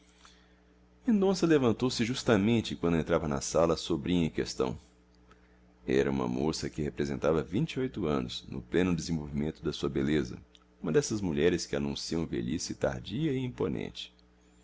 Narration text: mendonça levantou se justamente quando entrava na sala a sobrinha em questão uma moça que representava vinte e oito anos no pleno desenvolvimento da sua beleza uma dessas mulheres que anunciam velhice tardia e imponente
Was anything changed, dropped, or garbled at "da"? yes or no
no